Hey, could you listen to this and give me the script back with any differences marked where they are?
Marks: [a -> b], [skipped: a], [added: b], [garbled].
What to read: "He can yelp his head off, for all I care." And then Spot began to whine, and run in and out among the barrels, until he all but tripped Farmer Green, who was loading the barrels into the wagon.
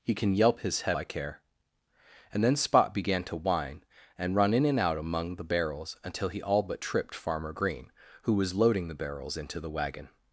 "He can yelp his head [skipped: off, for all] I care." And then Spot began to whine, and run in and out among the barrels, until he all but tripped Farmer Green, who was loading the barrels into the wagon.